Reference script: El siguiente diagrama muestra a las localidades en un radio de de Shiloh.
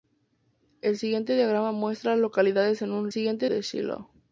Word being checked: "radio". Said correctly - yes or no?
no